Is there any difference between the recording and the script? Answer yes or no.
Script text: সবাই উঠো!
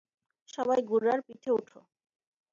yes